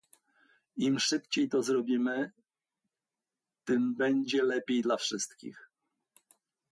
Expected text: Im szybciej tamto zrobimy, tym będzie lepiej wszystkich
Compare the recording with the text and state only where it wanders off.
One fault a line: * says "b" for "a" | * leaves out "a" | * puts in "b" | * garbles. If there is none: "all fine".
* says "to" for "tamto"
* puts in "dla"